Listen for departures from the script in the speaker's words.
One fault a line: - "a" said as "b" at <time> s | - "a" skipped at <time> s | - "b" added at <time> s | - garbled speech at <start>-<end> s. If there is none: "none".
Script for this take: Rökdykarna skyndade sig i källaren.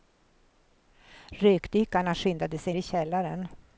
none